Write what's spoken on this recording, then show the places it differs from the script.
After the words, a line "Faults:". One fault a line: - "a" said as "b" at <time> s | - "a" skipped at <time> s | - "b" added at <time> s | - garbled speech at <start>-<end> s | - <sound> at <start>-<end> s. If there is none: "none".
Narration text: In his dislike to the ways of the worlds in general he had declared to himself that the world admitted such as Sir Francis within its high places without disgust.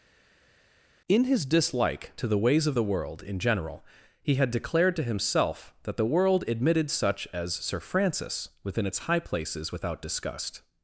In his dislike to the ways of the world in general he had declared to himself that the world admitted such as Sir Francis within its high places without disgust.
Faults:
- "worlds" said as "world" at 2.8 s